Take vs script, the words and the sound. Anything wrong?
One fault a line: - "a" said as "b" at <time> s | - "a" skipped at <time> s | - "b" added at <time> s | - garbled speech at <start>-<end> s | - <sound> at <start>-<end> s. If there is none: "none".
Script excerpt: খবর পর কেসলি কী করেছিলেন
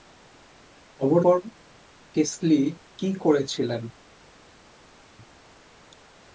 none